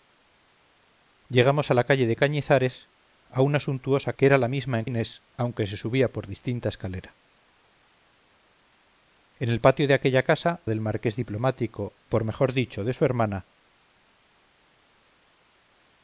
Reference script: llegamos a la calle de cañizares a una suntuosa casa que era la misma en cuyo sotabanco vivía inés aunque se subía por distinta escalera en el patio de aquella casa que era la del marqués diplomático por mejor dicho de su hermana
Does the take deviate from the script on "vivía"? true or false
true